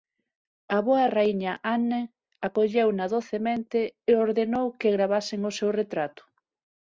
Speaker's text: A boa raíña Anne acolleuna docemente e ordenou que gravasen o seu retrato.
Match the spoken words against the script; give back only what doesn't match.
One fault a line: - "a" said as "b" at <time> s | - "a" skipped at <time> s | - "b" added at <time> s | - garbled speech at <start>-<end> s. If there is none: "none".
none